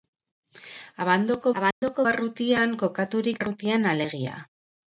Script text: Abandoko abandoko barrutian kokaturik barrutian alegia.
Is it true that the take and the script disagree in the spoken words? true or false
false